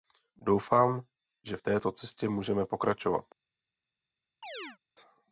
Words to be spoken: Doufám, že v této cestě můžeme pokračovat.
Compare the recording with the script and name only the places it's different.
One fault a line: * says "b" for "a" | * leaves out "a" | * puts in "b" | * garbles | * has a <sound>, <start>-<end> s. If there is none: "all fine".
* has a chirp, 4.4-4.8 s